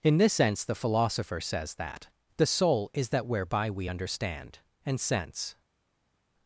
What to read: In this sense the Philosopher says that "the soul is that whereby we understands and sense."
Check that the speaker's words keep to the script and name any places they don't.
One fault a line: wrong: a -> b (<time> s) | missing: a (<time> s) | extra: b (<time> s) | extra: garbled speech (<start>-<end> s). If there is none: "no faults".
wrong: understands -> understand (3.9 s)